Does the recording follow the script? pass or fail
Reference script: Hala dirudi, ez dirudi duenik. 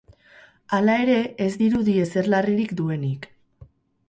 fail